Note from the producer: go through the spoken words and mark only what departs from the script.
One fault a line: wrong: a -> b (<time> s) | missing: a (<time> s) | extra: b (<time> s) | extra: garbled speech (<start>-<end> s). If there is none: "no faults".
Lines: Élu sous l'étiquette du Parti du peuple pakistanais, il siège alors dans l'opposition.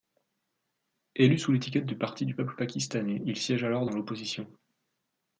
no faults